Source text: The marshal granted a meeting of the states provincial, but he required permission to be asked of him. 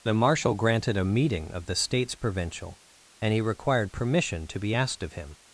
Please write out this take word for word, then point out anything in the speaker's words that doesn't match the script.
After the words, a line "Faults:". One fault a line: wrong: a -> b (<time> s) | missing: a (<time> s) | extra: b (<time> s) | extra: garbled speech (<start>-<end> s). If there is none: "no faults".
The marshal granted a meeting of the states provincial, and he required permission to be asked of him.
Faults:
wrong: but -> and (3.2 s)